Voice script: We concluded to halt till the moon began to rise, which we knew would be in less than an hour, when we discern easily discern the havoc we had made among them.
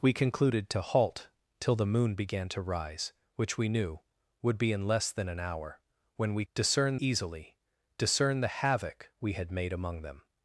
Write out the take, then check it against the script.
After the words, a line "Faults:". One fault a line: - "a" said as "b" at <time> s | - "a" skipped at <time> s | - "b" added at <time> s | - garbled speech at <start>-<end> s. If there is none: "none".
We concluded to halt till the moon began to rise, which we knew would be in less than an hour, when we discern easily discern the havoc we had made among them.
Faults:
none